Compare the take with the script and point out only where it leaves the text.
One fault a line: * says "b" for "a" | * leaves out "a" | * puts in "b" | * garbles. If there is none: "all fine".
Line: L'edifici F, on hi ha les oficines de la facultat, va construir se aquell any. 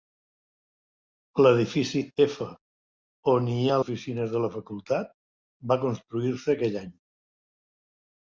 * leaves out "les"